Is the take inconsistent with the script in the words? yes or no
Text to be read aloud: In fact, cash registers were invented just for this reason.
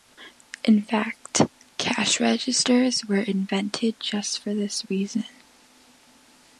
no